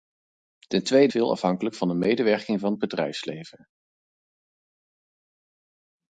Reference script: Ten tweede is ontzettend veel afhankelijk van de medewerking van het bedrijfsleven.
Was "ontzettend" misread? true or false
true